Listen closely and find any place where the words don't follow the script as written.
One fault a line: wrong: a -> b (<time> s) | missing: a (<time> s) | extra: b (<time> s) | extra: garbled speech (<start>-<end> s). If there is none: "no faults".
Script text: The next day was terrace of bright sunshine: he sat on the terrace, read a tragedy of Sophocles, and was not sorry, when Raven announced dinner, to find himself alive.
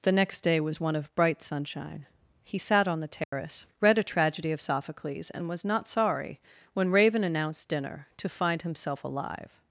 wrong: terrace -> one (0.8 s)